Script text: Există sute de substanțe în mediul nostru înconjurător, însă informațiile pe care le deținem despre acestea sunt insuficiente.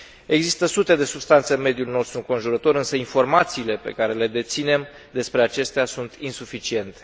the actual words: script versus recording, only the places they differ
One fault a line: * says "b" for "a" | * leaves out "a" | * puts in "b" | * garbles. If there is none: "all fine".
all fine